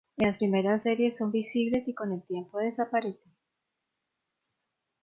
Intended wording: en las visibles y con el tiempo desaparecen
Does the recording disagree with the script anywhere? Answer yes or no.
yes